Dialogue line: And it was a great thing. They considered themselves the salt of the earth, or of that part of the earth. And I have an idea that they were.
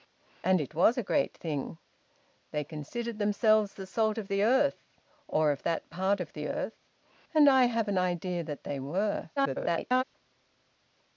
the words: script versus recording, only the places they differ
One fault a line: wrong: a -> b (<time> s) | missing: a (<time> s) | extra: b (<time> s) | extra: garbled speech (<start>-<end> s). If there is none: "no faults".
extra: garbled speech (9.4-10.0 s)